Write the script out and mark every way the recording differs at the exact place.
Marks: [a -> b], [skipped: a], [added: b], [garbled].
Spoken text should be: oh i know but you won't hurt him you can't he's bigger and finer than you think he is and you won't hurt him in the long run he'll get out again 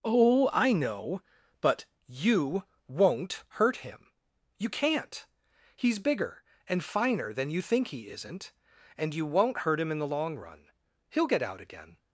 oh i know but you won't hurt him you can't he's bigger and finer than you think he [is -> isn't] and you won't hurt him in the long run he'll get out again